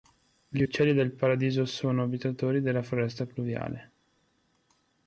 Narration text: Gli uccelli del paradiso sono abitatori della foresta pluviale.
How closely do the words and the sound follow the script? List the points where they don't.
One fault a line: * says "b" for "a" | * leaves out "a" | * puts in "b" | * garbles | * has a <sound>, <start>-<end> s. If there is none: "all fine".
all fine